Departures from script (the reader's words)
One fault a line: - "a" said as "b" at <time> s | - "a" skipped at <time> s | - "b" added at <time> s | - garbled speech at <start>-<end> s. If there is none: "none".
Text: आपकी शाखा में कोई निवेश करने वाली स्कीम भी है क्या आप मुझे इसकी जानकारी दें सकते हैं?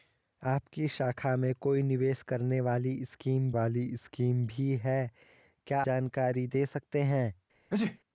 - "वाली स्कीम" added at 3.5 s
- "आप मुझे इसकी" skipped at 5.8 s